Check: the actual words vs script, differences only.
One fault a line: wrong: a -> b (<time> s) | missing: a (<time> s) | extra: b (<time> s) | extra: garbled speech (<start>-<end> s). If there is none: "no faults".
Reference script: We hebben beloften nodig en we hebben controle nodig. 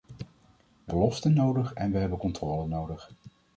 missing: hebben (0.9 s)